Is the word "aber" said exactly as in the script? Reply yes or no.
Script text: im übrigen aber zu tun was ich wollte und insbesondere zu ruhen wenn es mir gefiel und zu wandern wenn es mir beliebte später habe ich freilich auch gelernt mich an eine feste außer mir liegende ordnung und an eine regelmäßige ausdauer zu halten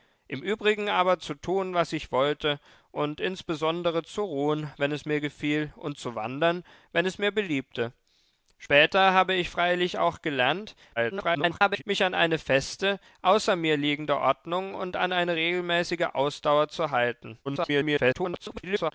yes